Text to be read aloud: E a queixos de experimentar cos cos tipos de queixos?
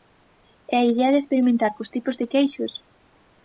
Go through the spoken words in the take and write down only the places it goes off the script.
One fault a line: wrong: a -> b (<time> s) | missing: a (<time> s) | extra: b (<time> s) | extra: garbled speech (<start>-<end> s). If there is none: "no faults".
wrong: queixos -> idea (0.9 s)
missing: cos (1.9 s)